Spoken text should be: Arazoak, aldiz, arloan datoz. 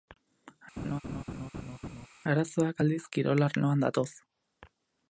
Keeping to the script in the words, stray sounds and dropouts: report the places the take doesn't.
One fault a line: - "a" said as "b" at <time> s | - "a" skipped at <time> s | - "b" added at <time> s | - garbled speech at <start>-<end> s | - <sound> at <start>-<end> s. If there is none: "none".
- laugh at 0.8-2.1 s
- "kirol" added at 3.2 s